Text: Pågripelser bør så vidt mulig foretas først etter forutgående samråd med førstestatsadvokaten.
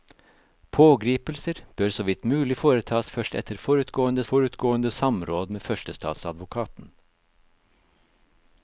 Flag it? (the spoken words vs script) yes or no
yes